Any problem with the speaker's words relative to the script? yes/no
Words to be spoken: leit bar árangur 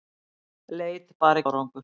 no